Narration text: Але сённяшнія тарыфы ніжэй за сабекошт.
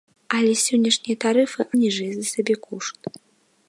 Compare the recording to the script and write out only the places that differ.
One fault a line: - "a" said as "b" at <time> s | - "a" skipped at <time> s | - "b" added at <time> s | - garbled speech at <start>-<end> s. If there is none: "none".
none